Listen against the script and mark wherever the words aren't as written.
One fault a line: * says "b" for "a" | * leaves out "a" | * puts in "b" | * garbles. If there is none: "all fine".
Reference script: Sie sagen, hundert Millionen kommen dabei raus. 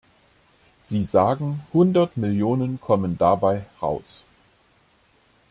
all fine